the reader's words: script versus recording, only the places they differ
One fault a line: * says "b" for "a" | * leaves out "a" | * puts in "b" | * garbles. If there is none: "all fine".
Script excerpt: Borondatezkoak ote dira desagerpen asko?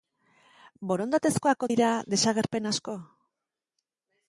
* leaves out "ote"